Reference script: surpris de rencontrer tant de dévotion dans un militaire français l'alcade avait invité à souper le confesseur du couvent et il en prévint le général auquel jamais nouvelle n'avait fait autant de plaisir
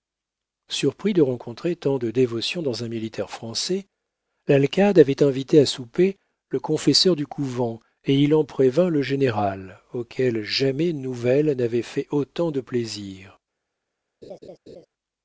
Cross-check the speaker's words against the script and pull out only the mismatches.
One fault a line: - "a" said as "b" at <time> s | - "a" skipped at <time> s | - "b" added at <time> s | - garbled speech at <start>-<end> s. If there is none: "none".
none